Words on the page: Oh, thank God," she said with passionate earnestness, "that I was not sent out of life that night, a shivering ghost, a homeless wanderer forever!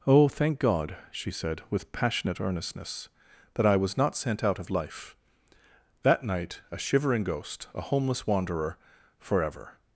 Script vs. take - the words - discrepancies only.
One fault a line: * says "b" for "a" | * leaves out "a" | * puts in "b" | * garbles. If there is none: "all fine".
all fine